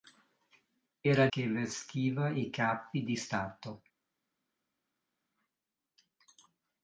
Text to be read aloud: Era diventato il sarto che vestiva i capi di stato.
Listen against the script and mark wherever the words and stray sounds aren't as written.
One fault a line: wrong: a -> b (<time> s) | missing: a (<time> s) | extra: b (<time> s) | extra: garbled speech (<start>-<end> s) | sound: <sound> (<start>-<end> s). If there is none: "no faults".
missing: diventato il sarto (1.3 s)